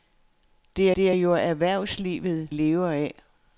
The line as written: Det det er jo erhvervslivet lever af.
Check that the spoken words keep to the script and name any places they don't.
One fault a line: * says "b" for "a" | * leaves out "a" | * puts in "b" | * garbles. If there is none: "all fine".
all fine